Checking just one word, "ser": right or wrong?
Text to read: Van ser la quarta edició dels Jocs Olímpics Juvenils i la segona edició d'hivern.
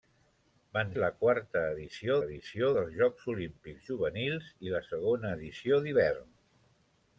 wrong